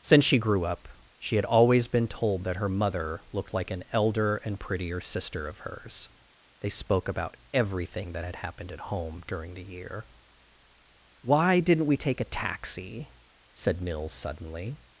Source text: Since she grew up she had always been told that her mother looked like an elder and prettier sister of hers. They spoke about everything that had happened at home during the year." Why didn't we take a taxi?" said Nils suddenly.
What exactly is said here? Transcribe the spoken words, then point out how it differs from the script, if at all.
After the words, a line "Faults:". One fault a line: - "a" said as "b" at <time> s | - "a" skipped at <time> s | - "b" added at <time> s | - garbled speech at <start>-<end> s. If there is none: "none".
Since she grew up she had always been told that her mother looked like an elder and prettier sister of hers. They spoke about everything that had happened at home during the year." Why didn't we take a taxi?" said Nils suddenly.
Faults:
none